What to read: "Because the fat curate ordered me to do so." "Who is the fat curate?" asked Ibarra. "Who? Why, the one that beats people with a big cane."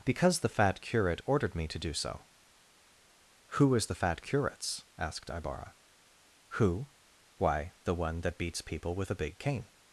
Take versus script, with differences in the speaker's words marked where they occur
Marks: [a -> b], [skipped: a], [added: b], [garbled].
"Because the fat curate ordered me to do so." "Who is the fat [curate?" -> curates] asked Ibarra. "Who? Why, the one that beats people with a big cane."